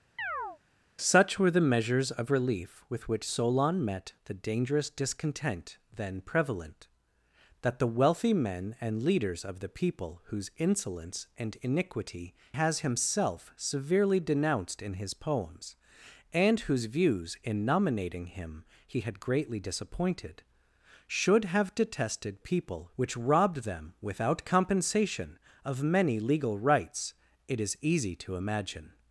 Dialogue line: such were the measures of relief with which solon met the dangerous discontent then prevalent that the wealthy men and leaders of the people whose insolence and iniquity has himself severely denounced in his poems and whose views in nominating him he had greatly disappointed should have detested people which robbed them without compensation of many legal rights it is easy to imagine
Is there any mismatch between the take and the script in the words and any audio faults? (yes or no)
yes